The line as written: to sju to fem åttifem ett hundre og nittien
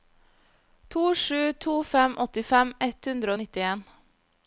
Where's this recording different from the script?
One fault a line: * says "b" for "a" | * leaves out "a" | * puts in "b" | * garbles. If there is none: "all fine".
all fine